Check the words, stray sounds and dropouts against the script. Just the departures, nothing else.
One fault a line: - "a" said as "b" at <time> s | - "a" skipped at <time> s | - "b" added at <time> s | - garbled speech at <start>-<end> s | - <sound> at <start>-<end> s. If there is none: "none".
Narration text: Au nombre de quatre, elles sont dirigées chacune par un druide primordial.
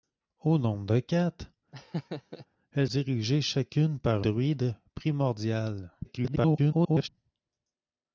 - laugh at 1.7-2.5 s
- "sont" skipped at 2.9 s
- "un" skipped at 4.3 s
- garbled speech at 6.0-7.1 s